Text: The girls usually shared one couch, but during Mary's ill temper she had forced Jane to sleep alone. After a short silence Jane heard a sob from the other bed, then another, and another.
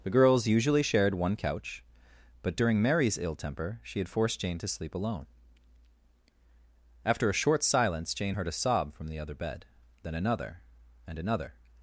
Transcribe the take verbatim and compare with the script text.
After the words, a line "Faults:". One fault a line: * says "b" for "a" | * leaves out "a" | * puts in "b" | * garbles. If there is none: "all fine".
The girls usually shared one couch, but during Mary's ill temper she had forced Jane to sleep alone. After a short silence Jane heard a sob from the other bed, then another, and another.
Faults:
all fine